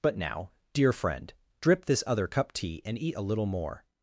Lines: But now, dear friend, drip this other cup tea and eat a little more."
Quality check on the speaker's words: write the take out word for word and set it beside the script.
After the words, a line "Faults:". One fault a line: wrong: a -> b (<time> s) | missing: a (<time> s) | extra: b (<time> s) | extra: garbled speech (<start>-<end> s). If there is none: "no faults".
But now, dear friend, drip this other cup tea and eat a little more."
Faults:
no faults